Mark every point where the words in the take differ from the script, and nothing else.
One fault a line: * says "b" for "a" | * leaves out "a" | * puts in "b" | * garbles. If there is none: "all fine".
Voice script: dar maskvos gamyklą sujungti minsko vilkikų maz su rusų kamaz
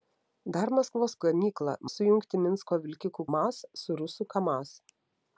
all fine